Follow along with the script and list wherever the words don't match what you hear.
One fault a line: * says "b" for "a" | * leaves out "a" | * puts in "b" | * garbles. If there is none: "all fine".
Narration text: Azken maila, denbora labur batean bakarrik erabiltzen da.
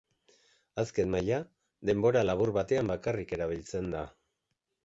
all fine